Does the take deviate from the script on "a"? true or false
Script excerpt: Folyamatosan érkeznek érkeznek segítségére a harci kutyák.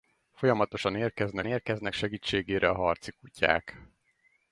false